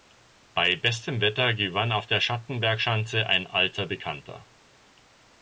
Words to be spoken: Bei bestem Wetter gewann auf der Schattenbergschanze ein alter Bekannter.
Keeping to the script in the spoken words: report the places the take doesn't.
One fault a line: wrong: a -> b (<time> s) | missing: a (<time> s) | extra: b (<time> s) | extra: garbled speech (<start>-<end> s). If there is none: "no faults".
no faults